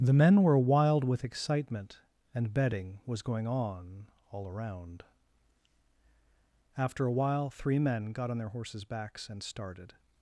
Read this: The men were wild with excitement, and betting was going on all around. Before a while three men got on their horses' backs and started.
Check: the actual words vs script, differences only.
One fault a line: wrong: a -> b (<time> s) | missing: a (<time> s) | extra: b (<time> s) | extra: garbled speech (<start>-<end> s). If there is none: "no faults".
wrong: Before -> After (6.8 s)